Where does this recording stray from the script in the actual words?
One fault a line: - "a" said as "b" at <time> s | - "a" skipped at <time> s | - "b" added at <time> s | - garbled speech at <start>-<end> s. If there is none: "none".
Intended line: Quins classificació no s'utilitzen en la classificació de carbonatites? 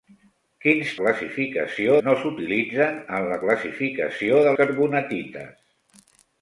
none